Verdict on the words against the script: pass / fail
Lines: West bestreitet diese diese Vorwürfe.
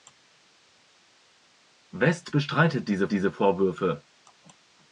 pass